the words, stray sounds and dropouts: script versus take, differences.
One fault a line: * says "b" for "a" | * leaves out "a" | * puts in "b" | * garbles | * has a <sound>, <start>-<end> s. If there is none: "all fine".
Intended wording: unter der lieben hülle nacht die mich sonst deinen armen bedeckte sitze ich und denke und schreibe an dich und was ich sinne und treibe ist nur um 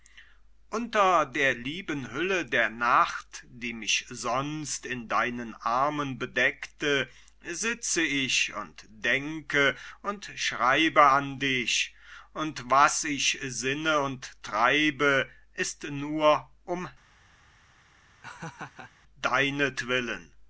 * puts in "der"
* puts in "in"
* has a laugh, 18.2-18.9 s